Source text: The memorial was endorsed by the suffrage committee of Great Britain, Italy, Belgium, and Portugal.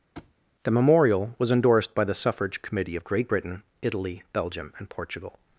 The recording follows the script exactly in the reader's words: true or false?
true